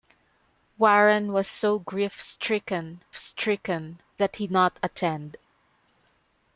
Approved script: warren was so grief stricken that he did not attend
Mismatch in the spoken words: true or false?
true